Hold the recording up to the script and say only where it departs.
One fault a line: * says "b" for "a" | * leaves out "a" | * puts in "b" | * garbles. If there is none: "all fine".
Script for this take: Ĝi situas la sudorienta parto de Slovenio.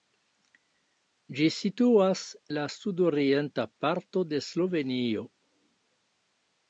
all fine